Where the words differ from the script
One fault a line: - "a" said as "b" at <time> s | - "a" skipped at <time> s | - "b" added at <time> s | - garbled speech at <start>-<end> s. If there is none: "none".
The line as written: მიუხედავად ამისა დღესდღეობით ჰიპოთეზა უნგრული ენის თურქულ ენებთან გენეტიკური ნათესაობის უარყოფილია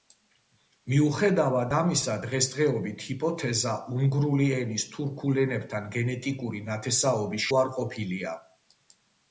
none